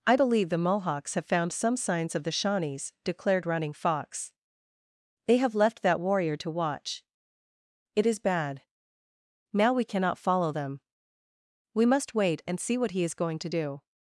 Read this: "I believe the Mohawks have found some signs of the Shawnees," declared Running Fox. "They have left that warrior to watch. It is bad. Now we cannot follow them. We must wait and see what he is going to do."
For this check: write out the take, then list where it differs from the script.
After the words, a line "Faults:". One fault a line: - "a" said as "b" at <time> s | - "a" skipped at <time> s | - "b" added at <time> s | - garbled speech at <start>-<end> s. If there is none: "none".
"I believe the Mohawks have found some signs of the Shawnees," declared Running Fox. "They have left that warrior to watch. It is bad. Now we cannot follow them. We must wait and see what he is going to do."
Faults:
none